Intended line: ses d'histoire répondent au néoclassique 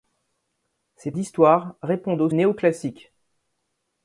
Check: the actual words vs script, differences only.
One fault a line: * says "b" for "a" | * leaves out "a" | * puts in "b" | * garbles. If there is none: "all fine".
all fine